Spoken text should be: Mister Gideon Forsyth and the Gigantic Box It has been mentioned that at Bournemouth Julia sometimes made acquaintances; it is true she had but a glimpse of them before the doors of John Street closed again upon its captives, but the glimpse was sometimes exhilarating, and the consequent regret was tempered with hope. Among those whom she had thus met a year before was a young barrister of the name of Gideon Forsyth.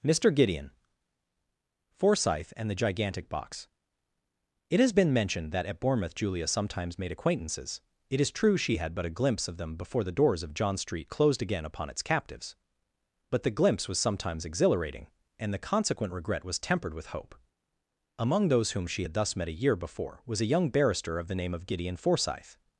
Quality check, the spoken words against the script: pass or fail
pass